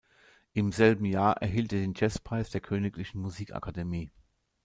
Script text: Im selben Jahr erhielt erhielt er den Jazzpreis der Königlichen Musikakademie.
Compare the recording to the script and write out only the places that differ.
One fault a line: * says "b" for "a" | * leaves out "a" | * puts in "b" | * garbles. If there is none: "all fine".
* leaves out "erhielt"